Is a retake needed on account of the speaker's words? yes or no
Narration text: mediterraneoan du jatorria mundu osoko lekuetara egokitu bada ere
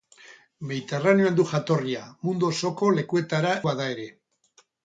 yes